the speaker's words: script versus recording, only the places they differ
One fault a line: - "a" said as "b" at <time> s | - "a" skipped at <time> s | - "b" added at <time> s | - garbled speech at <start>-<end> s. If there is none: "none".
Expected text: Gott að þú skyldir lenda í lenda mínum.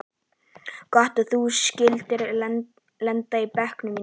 - "lenda" said as "bekknum" at 3.6 s